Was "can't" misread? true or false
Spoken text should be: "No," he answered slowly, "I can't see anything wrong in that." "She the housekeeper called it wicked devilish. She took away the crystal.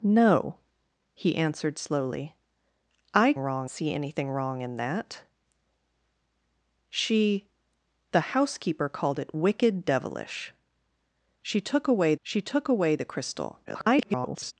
true